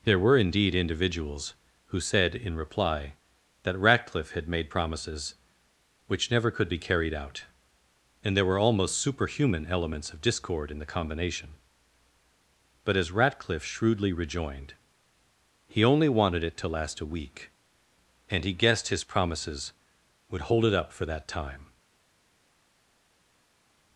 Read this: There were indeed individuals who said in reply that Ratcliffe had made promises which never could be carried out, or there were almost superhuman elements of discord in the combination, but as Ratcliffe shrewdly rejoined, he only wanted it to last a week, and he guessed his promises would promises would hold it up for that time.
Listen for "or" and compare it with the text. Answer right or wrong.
wrong